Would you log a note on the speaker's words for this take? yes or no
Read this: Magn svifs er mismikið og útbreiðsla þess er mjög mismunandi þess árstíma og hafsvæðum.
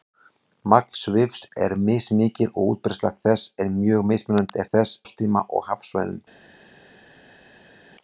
no